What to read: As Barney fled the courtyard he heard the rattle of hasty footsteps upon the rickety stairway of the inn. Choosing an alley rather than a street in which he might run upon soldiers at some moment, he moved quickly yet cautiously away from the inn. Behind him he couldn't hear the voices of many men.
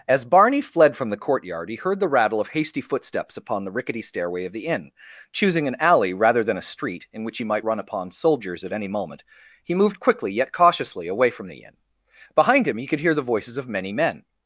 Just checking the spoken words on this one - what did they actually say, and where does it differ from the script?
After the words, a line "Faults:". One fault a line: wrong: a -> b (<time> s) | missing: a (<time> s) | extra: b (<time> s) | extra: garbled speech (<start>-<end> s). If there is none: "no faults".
As Barney fled from the courtyard he heard the rattle of hasty footsteps upon the rickety stairway of the inn. Choosing an alley rather than a street in which he might run upon soldiers at any moment, he moved quickly yet cautiously away from the inn. Behind him he could hear the voices of many men.
Faults:
extra: from (0.9 s)
wrong: some -> any (8.7 s)
wrong: couldn't -> could (12.9 s)